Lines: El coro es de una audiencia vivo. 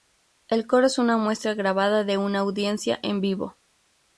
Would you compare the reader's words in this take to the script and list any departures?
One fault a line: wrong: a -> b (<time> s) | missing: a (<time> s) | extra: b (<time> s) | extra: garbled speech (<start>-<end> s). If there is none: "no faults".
extra: una muestra grabada (1.0 s)
extra: en (3.0 s)